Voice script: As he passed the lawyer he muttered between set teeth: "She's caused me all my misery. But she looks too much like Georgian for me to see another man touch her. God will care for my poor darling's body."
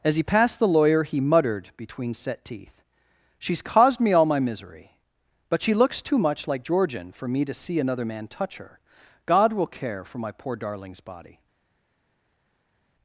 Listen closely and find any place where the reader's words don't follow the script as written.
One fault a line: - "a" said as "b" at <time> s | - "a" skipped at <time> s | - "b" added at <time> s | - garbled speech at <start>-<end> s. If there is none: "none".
none